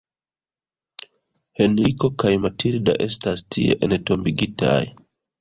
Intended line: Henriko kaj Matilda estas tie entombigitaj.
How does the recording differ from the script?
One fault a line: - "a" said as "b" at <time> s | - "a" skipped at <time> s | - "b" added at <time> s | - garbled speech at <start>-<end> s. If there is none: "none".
none